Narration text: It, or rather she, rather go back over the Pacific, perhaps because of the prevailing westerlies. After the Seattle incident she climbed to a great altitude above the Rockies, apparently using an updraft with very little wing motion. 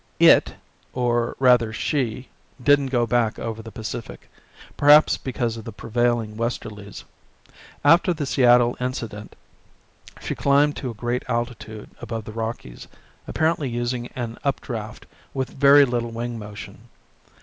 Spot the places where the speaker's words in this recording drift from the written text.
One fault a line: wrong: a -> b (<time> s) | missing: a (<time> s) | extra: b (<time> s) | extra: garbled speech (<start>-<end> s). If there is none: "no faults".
wrong: rather -> didn't (2.6 s)